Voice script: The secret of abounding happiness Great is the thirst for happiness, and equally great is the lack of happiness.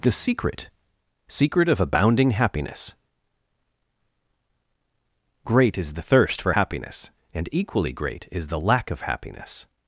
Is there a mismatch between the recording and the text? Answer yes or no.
yes